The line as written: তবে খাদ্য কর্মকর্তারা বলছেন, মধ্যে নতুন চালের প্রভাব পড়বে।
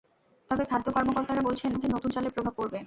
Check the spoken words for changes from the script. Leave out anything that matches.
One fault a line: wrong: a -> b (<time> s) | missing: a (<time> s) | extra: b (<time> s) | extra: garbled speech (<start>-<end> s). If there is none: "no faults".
no faults